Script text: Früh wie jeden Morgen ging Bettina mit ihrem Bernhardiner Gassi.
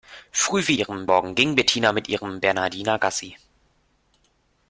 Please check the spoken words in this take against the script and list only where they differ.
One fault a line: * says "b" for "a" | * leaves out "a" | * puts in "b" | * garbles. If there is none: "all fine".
* says "ihrem" for "jeden"